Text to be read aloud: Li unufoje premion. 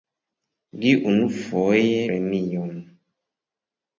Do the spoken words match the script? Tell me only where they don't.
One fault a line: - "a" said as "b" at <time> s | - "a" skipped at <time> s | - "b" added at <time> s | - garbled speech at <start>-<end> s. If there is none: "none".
none